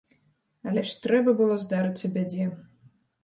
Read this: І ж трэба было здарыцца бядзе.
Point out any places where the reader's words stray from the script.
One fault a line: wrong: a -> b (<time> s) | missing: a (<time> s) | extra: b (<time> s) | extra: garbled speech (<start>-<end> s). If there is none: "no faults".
wrong: І -> Але (0.7 s)